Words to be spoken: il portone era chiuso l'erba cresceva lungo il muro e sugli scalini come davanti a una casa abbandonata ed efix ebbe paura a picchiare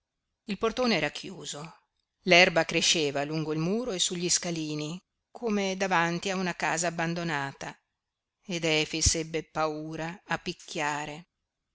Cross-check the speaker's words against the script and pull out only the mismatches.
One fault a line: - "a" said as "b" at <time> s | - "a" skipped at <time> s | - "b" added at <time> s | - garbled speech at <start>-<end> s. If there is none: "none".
none